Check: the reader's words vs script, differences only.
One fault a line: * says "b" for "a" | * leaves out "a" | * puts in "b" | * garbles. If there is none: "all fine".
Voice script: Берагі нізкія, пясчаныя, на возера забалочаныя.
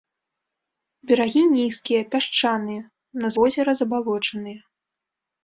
all fine